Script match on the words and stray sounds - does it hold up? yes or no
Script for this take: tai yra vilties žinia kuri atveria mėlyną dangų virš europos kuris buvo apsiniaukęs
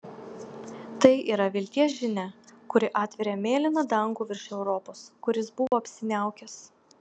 no